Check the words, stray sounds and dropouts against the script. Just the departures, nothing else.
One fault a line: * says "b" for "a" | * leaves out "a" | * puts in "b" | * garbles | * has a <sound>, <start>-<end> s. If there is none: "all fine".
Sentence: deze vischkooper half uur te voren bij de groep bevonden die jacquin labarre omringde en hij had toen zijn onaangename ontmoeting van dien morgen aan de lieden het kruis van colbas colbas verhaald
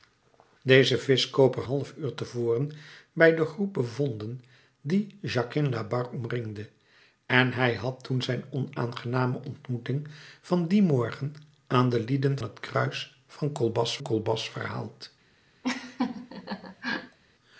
* has a laugh, 15.6-17.2 s